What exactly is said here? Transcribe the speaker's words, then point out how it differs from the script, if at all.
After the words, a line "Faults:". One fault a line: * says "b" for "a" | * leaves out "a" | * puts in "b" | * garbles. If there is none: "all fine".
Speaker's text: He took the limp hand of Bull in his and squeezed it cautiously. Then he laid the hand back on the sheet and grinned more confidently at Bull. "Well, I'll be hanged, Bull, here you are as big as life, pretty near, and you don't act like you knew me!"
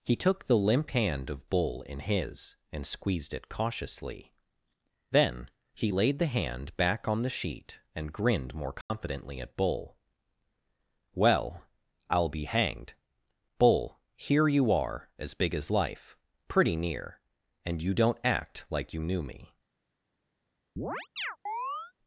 He took the limp hand of Bull in his and squeezed it cautiously. Then he laid the hand back on the sheet and grinned more confidently at Bull. "Well, I'll be hanged, Bull, here you are as big as life, pretty near, and you don't act like you knew me!"
Faults:
all fine